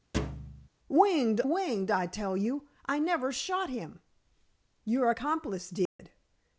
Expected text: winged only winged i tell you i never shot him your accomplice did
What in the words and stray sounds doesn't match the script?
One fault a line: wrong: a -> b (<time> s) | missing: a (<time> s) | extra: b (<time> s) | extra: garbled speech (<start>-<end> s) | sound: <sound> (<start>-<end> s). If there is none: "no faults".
sound: thud (0.1-0.7 s)
missing: only (1.4 s)
sound: dropout (5.9-6.0 s)